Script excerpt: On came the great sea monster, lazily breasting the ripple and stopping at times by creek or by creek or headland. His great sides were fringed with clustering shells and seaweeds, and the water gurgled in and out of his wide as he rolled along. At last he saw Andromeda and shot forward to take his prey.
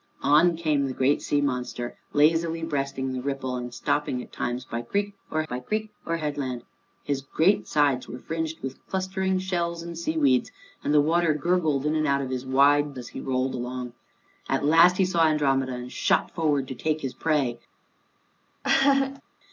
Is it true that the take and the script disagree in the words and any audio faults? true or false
true